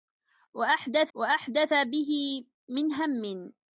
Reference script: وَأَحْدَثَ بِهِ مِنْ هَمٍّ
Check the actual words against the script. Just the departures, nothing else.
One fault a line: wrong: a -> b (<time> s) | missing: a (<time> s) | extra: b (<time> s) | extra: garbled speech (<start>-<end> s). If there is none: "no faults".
extra: وَأَحْدَثَ (1.1 s)